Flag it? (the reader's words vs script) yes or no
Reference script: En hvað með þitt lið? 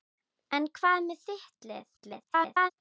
yes